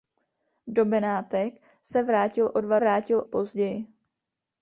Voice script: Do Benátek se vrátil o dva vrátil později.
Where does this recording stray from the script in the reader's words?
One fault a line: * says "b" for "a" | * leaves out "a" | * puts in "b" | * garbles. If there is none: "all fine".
all fine